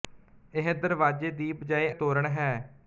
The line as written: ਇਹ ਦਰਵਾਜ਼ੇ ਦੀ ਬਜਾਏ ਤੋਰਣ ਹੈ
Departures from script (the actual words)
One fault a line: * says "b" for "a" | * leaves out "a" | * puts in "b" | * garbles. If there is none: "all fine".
all fine